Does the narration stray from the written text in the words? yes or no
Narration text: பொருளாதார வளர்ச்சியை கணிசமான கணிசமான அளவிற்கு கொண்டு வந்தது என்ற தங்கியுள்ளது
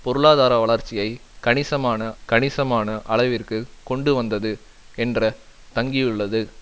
no